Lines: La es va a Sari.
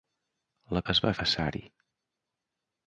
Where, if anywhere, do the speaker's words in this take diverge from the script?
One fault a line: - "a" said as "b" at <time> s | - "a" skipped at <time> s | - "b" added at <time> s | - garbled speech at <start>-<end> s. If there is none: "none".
none